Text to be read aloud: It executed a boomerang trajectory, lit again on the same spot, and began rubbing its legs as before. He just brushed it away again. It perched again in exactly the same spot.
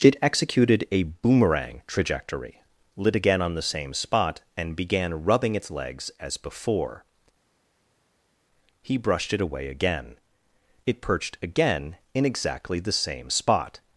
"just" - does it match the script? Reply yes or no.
no